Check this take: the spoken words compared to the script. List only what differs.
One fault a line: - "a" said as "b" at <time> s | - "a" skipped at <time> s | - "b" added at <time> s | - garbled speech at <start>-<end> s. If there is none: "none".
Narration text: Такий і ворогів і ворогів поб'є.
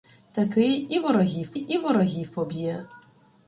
none